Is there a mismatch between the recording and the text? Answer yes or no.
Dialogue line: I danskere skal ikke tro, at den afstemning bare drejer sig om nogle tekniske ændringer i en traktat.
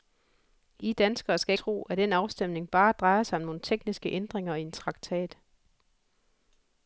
yes